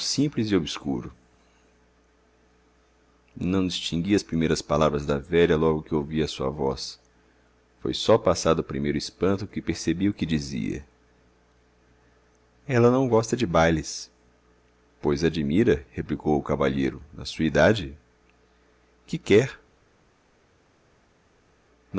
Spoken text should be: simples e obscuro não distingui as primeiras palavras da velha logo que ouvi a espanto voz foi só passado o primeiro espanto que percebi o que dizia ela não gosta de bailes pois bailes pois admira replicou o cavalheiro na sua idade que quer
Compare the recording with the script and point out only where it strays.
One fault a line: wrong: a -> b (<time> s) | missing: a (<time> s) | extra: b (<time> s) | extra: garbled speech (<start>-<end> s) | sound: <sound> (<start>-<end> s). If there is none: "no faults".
wrong: espanto -> sua (6.3 s)
missing: bailes pois (15.2 s)